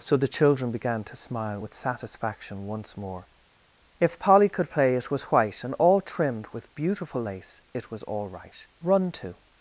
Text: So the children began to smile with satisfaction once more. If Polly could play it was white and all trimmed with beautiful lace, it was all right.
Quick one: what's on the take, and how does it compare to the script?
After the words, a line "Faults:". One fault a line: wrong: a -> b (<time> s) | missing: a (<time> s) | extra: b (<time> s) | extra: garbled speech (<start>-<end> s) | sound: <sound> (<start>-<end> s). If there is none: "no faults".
So the children began to smile with satisfaction once more. If Polly could play it was white and all trimmed with beautiful lace, it was all right. "Run to
Faults:
extra: Run to (8.8 s)